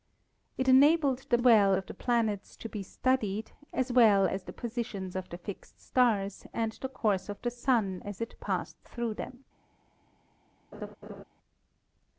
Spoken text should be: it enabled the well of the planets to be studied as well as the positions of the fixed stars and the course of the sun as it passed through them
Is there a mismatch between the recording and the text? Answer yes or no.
no